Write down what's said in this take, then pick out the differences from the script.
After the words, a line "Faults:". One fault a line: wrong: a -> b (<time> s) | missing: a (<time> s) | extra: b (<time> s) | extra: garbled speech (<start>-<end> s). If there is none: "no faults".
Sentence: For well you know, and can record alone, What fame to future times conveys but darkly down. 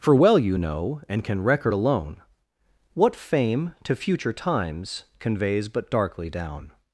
For well you know, and can record alone, What fame to future times conveys but darkly down.
Faults:
no faults